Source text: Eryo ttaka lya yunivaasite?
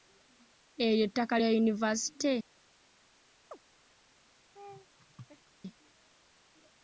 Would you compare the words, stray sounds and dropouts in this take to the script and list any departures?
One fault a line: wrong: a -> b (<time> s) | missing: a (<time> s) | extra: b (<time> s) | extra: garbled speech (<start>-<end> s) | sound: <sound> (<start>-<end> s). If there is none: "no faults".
sound: chirp (3.5-3.6 s)
sound: laugh (4.5-5.5 s)